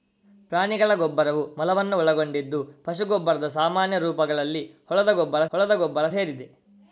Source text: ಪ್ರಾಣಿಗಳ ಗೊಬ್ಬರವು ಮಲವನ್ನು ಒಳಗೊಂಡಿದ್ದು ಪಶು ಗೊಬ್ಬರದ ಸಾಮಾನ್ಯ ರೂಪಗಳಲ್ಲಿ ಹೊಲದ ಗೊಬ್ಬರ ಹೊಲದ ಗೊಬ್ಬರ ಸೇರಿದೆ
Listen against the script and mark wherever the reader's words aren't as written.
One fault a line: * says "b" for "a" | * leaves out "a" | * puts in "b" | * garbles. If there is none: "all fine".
all fine